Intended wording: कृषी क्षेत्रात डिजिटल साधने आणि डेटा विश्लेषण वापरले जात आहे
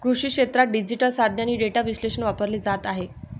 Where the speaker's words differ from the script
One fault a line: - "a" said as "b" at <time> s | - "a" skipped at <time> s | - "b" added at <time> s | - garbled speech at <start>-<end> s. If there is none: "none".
none